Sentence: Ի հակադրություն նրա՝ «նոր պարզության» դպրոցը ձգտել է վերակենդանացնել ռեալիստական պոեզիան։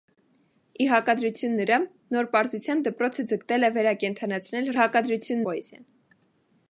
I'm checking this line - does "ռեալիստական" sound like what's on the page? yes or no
no